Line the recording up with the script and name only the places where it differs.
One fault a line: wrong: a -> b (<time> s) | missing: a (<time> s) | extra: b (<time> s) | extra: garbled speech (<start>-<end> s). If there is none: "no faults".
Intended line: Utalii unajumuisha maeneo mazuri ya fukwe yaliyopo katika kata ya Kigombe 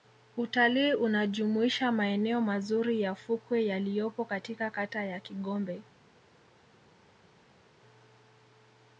no faults